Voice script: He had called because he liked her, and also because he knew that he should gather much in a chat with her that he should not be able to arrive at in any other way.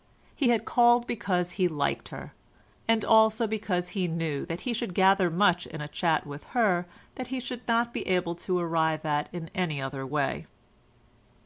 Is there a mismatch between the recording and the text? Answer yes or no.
no